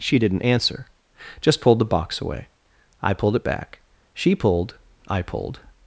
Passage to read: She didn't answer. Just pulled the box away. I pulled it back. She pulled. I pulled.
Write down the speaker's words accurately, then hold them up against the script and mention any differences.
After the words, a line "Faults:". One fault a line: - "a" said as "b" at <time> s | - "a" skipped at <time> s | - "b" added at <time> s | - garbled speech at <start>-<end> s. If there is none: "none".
She didn't answer. Just pulled the box away. I pulled it back. She pulled. I pulled.
Faults:
none